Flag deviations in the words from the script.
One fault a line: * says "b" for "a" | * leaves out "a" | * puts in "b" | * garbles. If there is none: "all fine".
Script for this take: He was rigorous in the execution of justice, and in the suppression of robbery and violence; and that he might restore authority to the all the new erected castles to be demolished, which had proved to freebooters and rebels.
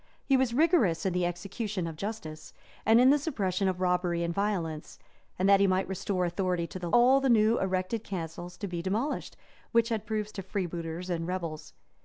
all fine